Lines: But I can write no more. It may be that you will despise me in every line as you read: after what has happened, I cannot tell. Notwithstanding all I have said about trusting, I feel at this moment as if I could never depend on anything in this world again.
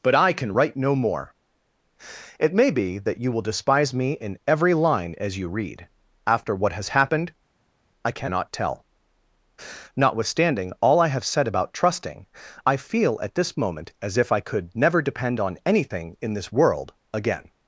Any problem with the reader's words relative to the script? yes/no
no